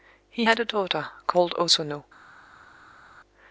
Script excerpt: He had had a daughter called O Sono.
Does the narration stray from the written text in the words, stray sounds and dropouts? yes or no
yes